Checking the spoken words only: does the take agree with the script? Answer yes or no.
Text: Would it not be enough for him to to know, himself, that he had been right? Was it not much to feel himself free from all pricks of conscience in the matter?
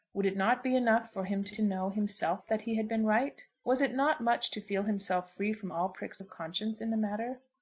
yes